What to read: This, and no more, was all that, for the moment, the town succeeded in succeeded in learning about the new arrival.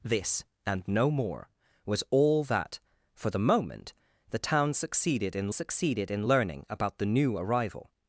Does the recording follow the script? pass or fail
pass